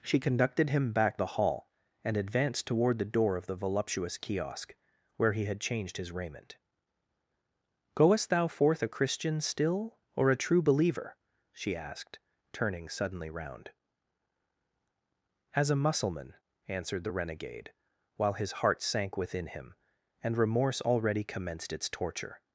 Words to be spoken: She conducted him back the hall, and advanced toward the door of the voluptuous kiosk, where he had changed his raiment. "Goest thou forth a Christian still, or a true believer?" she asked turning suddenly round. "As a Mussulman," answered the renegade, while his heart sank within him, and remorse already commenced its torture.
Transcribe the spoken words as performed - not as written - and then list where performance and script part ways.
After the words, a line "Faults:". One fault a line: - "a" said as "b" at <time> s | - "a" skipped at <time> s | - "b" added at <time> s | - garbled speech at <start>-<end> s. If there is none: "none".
She conducted him back the hall, and advanced toward the door of the voluptuous kiosk, where he had changed his raiment. "Goest thou forth a Christian still, or a true believer?" she asked turning suddenly round. "As a Mussulman," answered the renegade, while his heart sank within him, and remorse already commenced its torture.
Faults:
none